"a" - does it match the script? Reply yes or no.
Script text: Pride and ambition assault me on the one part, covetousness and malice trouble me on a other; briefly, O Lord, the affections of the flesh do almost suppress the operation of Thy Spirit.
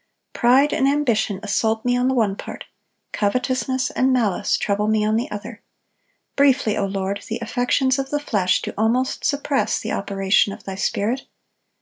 no